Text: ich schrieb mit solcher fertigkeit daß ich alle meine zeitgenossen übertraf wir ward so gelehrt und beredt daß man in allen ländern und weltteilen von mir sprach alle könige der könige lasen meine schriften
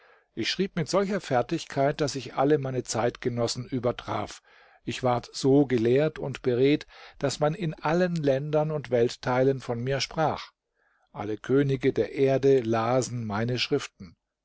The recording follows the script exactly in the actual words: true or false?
false